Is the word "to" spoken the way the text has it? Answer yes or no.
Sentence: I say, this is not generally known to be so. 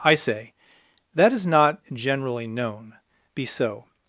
no